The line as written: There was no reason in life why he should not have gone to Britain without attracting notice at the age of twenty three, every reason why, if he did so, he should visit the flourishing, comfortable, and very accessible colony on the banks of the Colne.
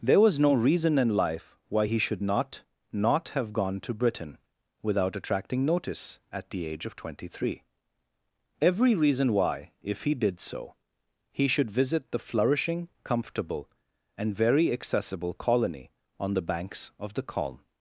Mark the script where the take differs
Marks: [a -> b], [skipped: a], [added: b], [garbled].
There was no reason in life why he should not [added: not] have gone to Britain without attracting notice at the age of twenty three, every reason why, if he did so, he should visit the flourishing, comfortable, and very accessible colony on the banks of the Colne.